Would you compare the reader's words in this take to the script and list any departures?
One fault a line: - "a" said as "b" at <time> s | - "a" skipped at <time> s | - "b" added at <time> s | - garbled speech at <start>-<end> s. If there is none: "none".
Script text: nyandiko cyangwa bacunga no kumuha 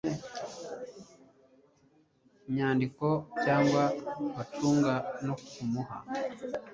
none